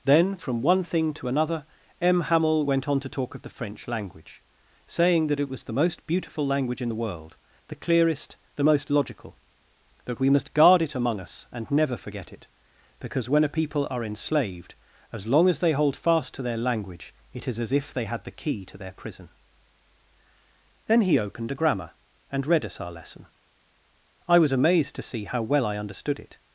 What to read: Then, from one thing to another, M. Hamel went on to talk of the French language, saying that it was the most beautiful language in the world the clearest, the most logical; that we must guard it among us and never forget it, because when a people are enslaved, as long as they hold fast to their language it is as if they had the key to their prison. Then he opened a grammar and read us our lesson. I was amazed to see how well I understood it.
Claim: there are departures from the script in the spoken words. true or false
false